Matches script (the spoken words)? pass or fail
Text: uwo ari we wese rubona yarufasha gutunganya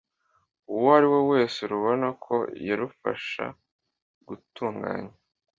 fail